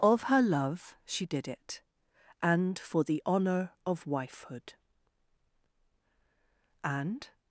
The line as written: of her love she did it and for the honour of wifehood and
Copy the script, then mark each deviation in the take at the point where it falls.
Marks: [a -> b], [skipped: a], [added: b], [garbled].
of her love she did it and for the honour of wifehood and